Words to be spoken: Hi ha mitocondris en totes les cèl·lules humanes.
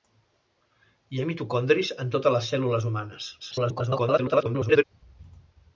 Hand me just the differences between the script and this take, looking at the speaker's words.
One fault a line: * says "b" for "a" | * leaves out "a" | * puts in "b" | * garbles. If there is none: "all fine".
* garbles